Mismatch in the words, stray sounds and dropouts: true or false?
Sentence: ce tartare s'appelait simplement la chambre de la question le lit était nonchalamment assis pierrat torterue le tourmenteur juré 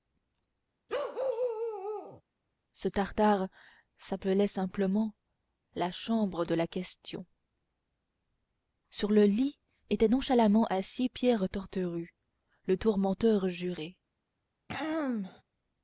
true